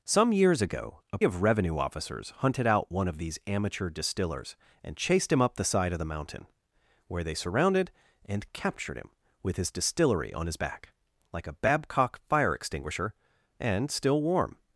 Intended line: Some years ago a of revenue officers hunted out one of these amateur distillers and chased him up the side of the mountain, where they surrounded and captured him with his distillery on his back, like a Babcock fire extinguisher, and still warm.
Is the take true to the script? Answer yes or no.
yes